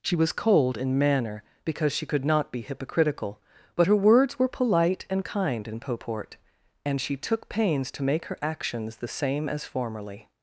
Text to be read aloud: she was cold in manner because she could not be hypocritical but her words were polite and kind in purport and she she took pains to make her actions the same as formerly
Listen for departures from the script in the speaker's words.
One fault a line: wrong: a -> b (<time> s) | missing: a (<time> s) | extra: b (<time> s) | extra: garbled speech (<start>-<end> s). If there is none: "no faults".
missing: she (7.2 s)